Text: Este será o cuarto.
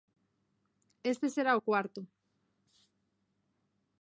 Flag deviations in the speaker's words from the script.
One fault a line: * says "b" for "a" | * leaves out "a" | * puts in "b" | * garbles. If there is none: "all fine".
all fine